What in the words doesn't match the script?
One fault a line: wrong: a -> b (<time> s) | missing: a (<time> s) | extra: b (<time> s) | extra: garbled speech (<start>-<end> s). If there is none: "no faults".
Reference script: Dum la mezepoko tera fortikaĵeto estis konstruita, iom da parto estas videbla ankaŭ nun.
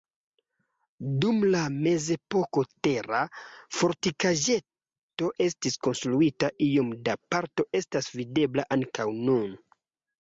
no faults